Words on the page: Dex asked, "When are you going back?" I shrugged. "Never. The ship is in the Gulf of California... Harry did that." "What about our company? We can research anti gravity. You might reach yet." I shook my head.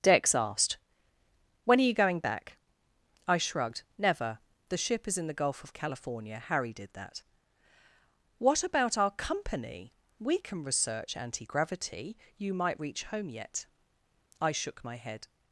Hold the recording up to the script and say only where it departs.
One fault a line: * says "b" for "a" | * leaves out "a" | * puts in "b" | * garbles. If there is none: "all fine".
* puts in "home"